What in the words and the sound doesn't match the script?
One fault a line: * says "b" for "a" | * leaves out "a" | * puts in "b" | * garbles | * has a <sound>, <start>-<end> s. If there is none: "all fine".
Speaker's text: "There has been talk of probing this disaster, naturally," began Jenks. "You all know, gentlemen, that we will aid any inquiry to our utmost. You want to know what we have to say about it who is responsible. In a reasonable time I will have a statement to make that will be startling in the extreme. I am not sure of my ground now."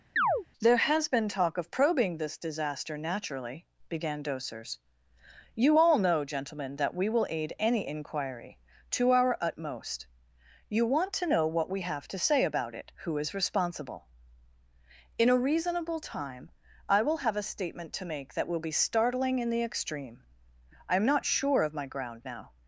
* has a chirp, 0.2-0.5 s
* says "Dosers" for "Jenks"